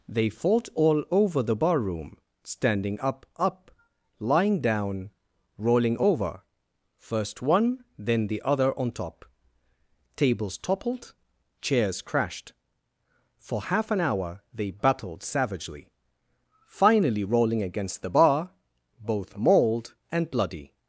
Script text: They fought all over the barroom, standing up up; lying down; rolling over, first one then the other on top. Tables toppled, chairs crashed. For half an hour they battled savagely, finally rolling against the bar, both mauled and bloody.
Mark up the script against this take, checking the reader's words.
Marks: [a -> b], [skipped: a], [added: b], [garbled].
They fought all over the barroom, standing up up; lying down; rolling over, first one then the other on top. Tables toppled, chairs crashed. For half an hour they battled savagely, finally rolling against the bar, both mauled and bloody.